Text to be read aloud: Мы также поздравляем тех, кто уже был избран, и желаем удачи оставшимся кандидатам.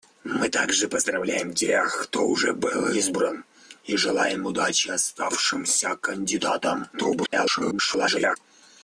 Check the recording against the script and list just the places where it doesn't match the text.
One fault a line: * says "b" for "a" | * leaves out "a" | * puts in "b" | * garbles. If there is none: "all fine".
* garbles